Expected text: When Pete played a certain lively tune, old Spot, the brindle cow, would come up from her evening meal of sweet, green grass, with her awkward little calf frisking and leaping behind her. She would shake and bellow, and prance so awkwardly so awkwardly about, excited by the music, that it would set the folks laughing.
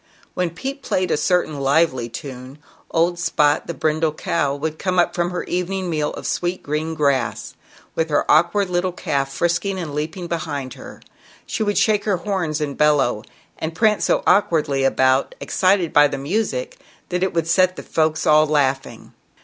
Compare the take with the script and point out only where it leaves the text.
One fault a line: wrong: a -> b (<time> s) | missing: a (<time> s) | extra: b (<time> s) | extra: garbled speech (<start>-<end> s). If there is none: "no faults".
extra: her horns (12.0 s)
missing: so awkwardly (14.8 s)
extra: all (18.2 s)